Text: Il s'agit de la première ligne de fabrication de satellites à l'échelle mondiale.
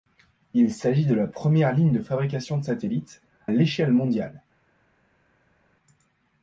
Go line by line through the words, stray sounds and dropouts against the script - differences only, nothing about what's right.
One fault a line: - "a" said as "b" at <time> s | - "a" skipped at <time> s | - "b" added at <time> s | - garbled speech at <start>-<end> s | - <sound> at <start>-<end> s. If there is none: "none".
- "à" skipped at 3.2 s